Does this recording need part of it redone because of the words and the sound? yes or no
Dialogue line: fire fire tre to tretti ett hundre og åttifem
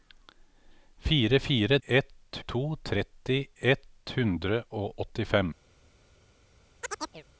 yes